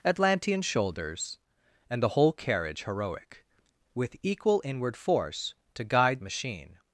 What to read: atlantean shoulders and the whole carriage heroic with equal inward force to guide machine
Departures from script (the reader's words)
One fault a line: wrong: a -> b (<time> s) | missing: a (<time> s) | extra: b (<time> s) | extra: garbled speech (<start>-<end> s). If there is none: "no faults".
no faults